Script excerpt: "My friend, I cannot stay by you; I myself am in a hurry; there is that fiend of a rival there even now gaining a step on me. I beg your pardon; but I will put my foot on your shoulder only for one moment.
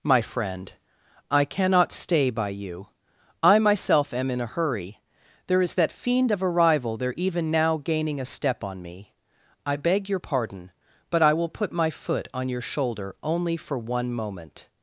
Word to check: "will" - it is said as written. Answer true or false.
true